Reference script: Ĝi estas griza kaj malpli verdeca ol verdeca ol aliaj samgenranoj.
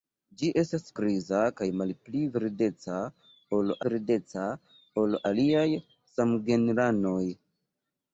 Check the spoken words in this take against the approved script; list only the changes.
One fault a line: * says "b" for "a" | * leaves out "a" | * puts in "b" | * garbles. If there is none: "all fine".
all fine